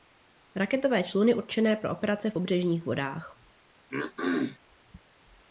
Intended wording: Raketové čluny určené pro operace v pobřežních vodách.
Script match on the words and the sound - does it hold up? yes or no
no